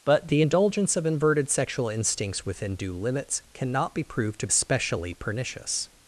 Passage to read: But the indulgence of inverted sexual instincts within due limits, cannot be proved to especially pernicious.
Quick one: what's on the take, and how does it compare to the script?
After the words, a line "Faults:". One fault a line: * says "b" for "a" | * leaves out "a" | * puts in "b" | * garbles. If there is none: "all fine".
But the indulgence of inverted sexual instincts within due limits, cannot be proved to especially pernicious.
Faults:
all fine